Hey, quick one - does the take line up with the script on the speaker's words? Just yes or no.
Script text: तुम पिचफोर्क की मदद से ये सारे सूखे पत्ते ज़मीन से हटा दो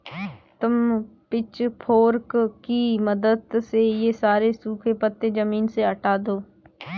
yes